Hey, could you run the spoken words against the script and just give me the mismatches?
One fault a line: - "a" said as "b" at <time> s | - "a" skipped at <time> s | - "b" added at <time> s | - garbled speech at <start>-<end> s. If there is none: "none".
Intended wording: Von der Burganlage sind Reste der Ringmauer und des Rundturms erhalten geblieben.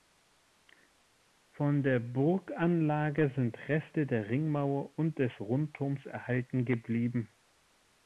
none